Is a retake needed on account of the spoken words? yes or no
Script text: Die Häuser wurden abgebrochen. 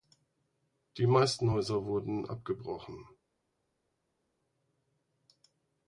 yes